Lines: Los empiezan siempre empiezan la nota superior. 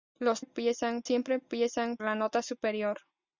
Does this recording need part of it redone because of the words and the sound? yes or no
no